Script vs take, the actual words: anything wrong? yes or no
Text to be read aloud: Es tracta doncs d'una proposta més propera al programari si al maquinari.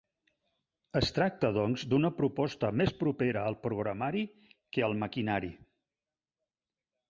yes